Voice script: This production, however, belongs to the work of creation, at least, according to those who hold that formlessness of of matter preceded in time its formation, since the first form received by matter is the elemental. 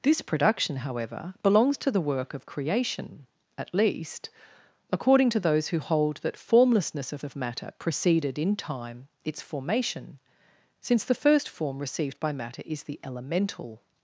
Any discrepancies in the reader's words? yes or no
no